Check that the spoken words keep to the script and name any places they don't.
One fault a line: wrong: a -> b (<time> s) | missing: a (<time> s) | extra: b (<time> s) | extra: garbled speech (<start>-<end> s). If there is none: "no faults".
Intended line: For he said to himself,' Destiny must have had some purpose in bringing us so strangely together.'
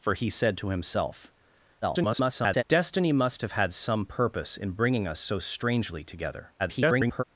extra: garbled speech (1.8-2.6 s)
extra: garbled speech (6.6-7.2 s)